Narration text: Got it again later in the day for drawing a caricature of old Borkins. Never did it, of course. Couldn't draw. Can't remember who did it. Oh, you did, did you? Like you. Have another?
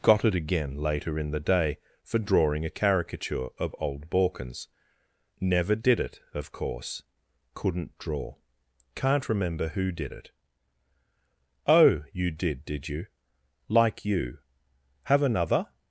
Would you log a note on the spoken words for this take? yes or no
no